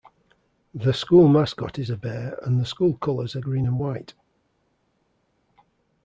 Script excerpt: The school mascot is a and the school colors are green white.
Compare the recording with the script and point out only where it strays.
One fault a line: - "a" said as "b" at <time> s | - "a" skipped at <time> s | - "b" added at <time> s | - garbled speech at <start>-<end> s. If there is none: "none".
- "bear" added at 2.0 s
- "and" added at 3.6 s